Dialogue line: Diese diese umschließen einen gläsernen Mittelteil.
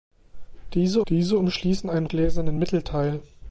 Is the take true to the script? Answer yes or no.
yes